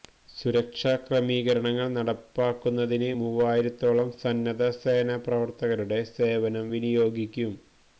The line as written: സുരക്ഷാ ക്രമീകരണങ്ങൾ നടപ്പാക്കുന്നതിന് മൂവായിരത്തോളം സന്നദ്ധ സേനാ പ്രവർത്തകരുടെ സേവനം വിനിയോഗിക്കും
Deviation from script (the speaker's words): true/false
false